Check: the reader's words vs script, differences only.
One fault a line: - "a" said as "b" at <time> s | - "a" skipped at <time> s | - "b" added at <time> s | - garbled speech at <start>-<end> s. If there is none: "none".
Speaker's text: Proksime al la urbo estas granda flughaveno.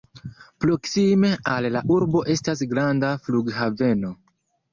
none